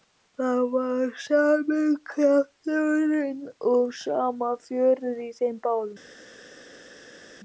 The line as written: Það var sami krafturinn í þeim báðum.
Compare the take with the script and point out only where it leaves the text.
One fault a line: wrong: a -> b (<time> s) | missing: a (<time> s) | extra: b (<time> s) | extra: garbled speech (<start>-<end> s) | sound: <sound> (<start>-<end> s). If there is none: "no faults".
extra: og sama fjörið (3.7 s)